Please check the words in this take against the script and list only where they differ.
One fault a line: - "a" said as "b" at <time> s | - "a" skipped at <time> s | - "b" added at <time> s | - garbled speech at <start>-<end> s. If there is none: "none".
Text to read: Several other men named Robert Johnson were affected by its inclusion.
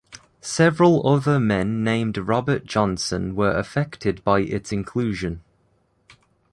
none